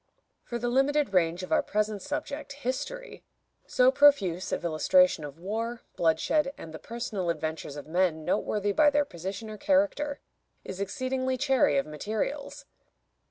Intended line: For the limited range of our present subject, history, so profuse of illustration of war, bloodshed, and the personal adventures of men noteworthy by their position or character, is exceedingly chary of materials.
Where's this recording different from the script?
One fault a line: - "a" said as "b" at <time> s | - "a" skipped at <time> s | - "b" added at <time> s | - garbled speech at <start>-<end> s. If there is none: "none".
none